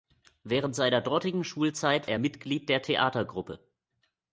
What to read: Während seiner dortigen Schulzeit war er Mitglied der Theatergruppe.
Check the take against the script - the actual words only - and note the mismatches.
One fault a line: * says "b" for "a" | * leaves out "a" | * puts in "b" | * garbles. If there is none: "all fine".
* leaves out "war"